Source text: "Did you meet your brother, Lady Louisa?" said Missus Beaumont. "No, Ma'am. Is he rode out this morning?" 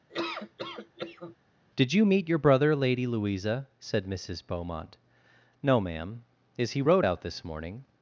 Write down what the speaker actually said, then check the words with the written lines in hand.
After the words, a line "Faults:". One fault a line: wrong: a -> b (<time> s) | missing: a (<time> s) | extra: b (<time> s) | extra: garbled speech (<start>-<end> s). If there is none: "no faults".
"Did you meet your brother, Lady Louisa?" said Missus Beaumont. "No, Ma'am. Is he rode out this morning?"
Faults:
no faults